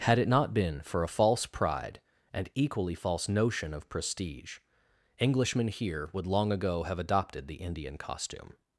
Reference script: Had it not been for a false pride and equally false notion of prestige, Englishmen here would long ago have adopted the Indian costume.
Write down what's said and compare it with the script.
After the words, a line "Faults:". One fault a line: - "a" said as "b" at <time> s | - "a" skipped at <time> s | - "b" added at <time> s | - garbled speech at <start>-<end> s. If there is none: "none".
Had it not been for a false pride and equally false notion of prestige, Englishmen here would long ago have adopted the Indian costume.
Faults:
none